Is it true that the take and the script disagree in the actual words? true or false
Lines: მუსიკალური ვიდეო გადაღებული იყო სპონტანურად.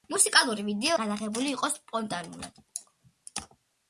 false